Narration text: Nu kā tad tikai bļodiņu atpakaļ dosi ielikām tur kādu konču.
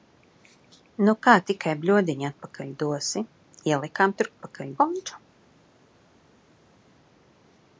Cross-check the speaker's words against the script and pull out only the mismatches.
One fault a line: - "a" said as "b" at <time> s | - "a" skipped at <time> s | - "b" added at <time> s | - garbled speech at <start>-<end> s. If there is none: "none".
- "tad" skipped at 1.4 s
- "kādu" said as "atpakaļ" at 4.3 s